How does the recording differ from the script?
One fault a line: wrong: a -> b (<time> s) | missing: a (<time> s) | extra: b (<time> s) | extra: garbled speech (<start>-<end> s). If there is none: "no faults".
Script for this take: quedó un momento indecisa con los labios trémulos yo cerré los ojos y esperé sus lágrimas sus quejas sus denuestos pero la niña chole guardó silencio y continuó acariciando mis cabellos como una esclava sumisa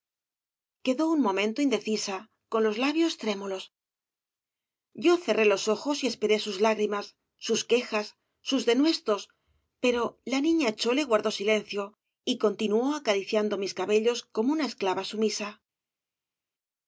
no faults